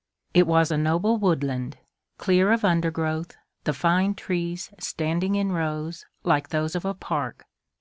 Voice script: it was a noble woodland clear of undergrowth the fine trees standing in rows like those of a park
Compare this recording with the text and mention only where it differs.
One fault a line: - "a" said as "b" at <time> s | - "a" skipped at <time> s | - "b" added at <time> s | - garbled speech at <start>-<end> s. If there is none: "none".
none